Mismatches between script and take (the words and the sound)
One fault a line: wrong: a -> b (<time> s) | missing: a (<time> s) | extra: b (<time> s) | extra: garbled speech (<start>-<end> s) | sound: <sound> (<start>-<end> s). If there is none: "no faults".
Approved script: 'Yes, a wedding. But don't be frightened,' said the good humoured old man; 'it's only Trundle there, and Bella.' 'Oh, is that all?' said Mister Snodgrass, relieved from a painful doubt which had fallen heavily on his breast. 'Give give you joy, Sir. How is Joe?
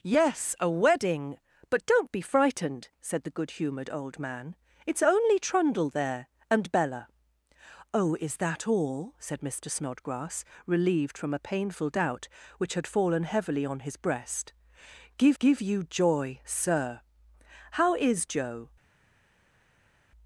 no faults